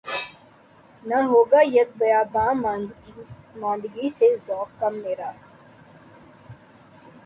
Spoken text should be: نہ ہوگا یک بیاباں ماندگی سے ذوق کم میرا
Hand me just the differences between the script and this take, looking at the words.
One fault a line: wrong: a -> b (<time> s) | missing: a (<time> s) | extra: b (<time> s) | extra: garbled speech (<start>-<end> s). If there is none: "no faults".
no faults